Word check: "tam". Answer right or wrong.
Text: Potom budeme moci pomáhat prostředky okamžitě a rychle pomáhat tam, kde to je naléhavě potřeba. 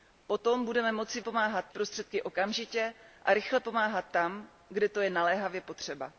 right